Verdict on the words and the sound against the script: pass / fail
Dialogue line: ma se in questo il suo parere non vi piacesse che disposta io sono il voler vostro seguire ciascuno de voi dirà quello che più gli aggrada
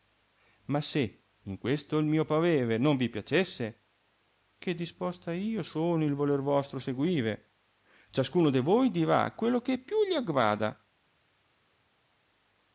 fail